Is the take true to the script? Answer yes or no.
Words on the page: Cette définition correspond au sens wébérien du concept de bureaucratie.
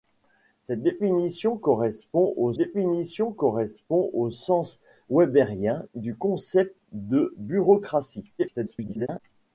no